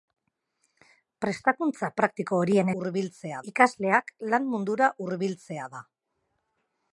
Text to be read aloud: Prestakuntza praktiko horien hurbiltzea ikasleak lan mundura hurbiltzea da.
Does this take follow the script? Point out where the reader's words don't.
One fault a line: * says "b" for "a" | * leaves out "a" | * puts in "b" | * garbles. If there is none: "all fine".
all fine